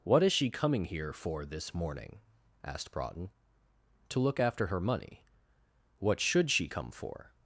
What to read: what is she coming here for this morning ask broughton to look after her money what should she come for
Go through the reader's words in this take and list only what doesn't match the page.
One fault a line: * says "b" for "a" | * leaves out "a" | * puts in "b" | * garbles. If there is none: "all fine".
* says "asked" for "ask"